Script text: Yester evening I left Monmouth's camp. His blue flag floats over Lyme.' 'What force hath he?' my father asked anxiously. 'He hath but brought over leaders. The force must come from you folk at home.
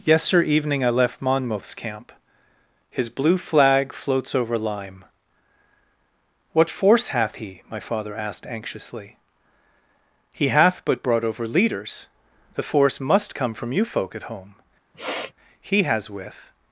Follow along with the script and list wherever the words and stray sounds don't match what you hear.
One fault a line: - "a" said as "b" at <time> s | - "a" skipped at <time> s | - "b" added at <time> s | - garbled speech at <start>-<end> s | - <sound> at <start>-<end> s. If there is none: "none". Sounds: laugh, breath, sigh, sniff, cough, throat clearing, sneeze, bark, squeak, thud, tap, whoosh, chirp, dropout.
- sniff at 14.9-15.3 s
- "He has with" added at 15.6 s